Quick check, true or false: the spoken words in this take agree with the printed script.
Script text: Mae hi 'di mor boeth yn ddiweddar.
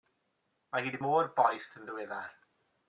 true